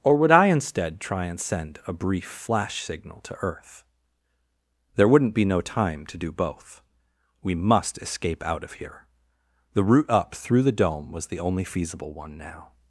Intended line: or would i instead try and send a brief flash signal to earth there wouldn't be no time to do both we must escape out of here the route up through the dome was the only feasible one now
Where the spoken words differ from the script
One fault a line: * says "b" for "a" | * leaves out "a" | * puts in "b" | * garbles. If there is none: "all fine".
all fine